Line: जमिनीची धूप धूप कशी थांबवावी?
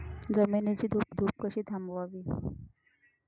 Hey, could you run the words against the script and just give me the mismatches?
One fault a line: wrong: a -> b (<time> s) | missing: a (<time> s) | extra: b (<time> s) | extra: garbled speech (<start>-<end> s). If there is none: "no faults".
no faults